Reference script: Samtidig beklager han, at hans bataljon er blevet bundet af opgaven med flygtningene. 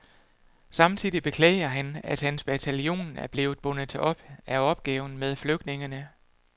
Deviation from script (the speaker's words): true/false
true